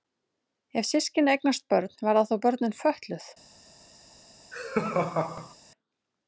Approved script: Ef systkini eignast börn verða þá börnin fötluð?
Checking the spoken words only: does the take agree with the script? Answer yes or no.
yes